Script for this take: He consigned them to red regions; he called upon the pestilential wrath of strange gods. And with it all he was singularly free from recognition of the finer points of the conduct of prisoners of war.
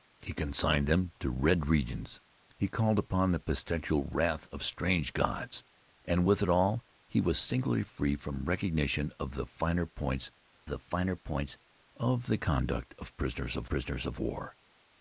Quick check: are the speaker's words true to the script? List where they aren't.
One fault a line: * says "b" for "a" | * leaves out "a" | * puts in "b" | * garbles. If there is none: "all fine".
* puts in "the finer points"
* puts in "prisoners of"